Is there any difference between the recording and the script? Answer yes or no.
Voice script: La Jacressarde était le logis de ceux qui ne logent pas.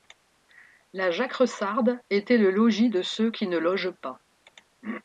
no